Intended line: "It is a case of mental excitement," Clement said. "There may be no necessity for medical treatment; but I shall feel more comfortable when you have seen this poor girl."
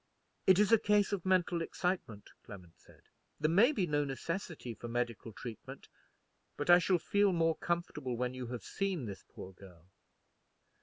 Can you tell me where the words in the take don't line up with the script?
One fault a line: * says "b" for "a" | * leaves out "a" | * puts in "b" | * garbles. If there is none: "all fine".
all fine